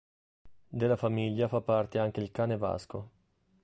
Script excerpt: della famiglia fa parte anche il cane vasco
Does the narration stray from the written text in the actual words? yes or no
no